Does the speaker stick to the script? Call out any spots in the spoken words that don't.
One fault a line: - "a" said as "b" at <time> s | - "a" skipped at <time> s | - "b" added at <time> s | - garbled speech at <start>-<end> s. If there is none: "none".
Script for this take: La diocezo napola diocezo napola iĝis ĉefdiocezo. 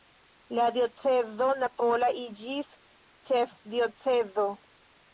- "diocezo napola" skipped at 2.1 s